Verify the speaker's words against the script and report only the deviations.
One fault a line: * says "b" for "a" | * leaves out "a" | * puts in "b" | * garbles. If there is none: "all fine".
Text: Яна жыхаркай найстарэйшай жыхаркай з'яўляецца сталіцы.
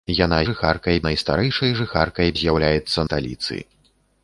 all fine